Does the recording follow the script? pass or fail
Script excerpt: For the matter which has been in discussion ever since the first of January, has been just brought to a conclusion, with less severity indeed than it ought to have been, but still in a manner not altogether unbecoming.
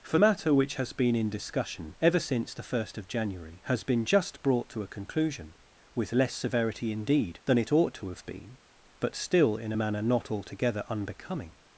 fail